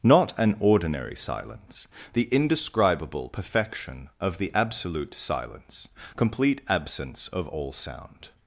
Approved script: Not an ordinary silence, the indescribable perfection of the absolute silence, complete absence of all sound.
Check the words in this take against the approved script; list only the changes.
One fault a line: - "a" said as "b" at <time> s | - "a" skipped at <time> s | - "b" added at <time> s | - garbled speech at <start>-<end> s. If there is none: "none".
none